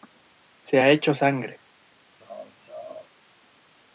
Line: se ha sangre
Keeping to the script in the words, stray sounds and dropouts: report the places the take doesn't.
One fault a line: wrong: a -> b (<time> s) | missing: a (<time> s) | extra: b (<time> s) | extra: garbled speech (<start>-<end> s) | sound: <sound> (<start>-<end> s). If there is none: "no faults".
extra: hecho (0.9 s)
sound: laugh (2.2-3.1 s)